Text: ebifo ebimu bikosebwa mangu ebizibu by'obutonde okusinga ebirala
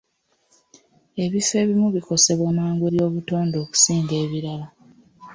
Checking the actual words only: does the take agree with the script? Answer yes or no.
no